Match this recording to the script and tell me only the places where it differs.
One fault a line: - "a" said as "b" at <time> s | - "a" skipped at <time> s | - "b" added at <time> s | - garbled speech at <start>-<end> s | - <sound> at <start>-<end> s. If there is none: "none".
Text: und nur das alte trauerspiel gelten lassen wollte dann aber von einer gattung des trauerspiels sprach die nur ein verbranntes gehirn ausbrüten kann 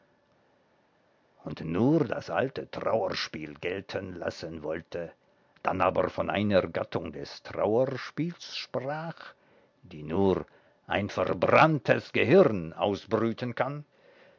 none